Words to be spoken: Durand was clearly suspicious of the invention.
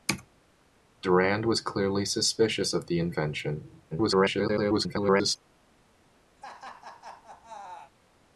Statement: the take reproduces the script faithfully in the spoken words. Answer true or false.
false